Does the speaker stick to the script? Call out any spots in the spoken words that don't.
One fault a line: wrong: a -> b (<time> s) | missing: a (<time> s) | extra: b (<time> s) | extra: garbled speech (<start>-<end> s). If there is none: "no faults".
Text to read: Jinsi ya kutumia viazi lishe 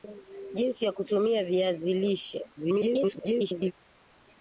extra: garbled speech (2.6-3.7 s)